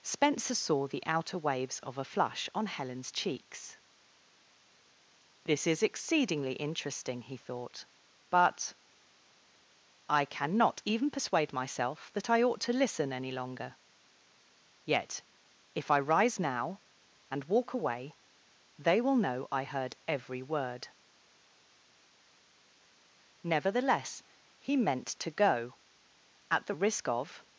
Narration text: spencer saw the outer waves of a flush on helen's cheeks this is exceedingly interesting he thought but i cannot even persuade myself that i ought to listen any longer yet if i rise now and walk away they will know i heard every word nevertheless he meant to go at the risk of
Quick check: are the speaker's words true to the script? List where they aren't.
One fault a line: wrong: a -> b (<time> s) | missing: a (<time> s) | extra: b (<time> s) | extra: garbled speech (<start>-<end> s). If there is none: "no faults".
no faults